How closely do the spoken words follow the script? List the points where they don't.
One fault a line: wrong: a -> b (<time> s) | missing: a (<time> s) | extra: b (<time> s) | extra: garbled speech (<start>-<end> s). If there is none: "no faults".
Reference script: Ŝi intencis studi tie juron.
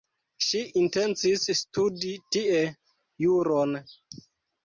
no faults